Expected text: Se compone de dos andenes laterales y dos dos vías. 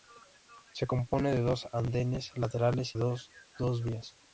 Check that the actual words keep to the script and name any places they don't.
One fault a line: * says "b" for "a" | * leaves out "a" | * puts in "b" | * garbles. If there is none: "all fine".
* leaves out "y"